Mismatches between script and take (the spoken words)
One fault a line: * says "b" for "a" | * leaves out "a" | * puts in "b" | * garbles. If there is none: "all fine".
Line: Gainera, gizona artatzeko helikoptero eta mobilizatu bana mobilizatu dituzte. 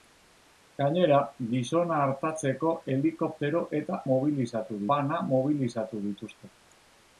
all fine